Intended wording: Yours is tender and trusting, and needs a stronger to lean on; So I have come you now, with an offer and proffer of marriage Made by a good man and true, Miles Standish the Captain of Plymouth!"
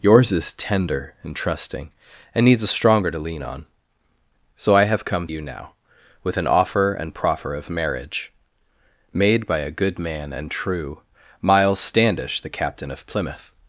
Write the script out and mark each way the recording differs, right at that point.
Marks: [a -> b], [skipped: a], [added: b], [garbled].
Yours is tender and trusting, and needs a stronger to lean on; So I have come you now, with an offer and proffer of marriage Made by a good man and true, Miles Standish the Captain of Plymouth!"